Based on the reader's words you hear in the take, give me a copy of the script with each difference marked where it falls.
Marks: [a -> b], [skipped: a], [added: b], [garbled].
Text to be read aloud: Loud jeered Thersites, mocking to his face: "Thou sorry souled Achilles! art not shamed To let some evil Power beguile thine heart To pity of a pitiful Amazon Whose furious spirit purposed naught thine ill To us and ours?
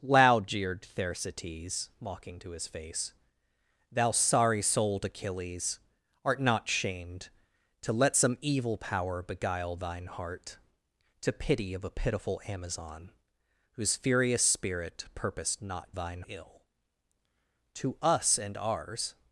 Loud jeered Thersites, mocking to his face: "Thou sorry souled Achilles! art not shamed To let some evil Power beguile thine heart To pity of a pitiful Amazon Whose furious spirit purposed naught thine ill To us and ours?